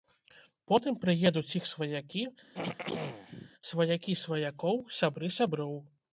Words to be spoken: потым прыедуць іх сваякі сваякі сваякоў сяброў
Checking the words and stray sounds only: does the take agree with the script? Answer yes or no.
no